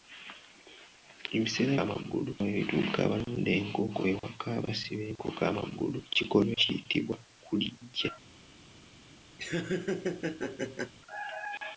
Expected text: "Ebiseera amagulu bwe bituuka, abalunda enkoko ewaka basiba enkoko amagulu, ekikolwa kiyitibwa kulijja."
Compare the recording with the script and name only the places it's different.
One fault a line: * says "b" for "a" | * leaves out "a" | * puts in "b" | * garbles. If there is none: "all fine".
all fine